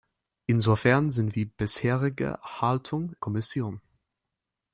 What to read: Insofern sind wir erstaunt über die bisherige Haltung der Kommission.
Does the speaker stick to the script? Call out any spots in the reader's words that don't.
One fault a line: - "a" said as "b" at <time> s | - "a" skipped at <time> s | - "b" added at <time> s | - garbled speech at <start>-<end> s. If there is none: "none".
- "wir erstaunt über" skipped at 1.4 s
- "der" skipped at 3.2 s